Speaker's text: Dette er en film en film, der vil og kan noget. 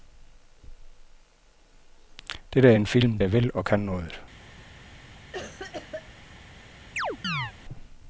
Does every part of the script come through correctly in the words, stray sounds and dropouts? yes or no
no